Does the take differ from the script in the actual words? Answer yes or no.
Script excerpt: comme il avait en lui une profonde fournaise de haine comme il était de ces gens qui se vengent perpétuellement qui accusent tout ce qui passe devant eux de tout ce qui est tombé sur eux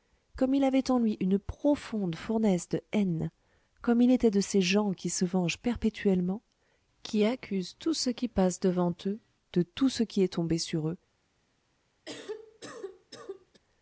no